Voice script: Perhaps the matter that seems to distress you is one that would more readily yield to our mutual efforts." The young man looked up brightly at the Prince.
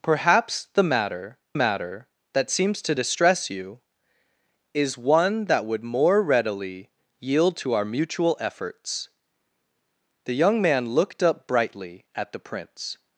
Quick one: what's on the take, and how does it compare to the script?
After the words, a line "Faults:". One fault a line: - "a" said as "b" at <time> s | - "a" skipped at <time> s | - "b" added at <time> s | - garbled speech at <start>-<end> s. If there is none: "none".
Perhaps the matter matter that seems to distress you is one that would more readily yield to our mutual efforts." The young man looked up brightly at the Prince.
Faults:
- "matter" added at 1.5 s